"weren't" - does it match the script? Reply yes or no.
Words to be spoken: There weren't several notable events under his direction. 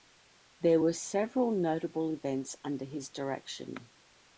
no